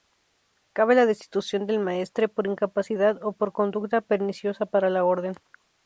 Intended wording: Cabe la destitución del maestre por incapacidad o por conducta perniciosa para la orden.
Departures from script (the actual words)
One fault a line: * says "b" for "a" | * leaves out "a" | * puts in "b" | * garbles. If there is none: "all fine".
all fine